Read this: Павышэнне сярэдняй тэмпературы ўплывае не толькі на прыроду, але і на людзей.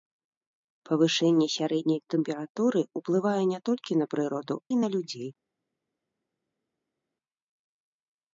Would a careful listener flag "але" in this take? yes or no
yes